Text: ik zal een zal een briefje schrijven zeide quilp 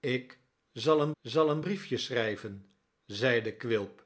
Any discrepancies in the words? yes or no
no